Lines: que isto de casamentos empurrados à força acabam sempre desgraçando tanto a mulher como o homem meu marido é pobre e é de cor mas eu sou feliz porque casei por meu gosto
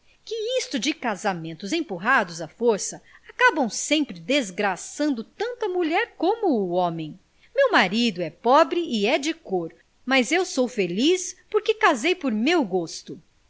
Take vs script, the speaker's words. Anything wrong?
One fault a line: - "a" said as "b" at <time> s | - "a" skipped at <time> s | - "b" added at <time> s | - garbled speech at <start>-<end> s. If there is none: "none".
none